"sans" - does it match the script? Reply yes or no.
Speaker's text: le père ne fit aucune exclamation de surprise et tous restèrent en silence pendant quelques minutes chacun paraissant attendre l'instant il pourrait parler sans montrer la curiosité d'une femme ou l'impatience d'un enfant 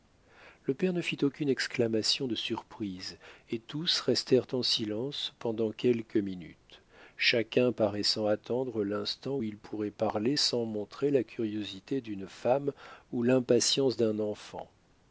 yes